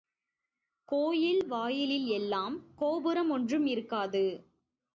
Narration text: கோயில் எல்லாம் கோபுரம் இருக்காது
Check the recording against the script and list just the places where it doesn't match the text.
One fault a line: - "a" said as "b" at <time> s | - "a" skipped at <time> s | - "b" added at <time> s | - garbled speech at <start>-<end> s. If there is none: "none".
- "வாயிலில்" added at 1.5 s
- "ஒன்றும்" added at 3.3 s